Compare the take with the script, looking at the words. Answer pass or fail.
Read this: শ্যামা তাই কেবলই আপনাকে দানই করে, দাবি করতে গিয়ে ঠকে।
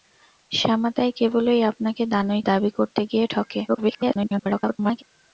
fail